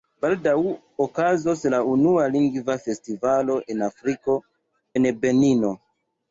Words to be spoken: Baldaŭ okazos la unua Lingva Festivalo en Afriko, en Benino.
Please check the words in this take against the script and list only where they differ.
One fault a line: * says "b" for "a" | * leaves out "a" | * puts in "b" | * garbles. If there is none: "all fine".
all fine